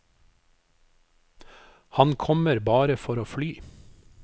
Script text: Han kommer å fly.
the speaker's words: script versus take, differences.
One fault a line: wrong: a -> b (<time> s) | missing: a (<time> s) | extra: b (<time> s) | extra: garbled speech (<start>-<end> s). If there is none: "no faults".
extra: bare for (2.6 s)